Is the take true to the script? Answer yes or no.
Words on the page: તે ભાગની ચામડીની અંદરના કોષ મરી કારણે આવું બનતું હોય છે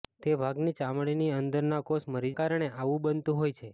yes